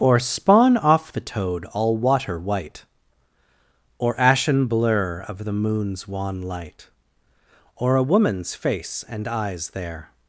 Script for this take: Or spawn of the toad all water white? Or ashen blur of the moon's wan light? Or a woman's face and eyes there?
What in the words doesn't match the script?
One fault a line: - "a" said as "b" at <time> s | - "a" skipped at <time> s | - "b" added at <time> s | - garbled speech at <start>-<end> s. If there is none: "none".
- "of" said as "off" at 0.8 s